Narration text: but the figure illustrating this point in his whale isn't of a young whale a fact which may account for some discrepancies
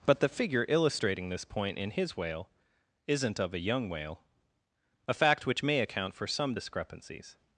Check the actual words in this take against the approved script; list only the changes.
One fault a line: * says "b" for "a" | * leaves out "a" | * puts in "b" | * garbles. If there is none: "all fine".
all fine